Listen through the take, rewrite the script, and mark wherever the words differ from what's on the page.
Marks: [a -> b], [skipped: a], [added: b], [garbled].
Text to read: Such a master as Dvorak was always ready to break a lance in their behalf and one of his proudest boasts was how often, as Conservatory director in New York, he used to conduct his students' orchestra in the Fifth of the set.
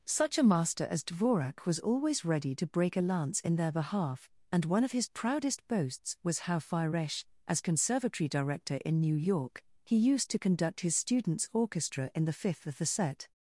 Such a master as Dvorak was always ready to break a lance in their behalf and one of his proudest boasts was how [often, -> firesh] as Conservatory director in New York, he used to conduct his students' orchestra in the Fifth of the set.